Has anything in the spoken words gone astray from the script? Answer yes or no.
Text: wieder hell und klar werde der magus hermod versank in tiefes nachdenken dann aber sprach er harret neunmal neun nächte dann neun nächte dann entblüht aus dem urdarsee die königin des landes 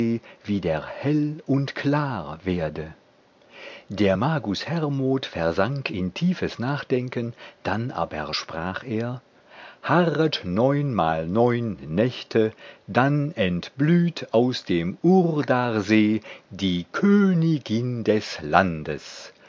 yes